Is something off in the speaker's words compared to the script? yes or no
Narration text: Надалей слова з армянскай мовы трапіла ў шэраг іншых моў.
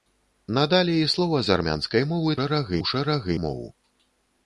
yes